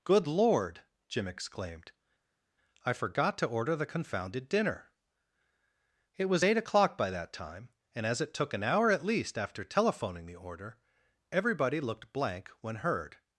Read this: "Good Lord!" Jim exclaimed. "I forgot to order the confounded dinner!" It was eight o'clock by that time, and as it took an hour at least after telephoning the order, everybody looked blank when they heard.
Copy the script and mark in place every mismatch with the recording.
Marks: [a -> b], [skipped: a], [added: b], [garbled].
"Good Lord!" Jim exclaimed. "I forgot to order the confounded dinner!" It was eight o'clock by that time, and as it took an hour at least after telephoning the order, everybody looked blank when [skipped: they] heard.